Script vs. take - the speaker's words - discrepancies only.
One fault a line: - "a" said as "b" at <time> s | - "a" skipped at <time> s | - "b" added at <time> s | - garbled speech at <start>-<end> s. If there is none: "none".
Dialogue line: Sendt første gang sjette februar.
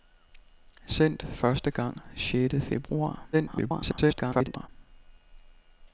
- garbled speech at 3.3-4.7 s